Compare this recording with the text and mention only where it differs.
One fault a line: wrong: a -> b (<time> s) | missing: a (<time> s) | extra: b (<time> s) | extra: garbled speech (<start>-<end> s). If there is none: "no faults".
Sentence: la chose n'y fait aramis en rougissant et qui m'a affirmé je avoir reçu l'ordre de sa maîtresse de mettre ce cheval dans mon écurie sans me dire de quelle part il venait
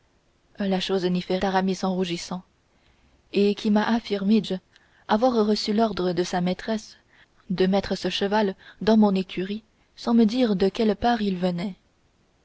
no faults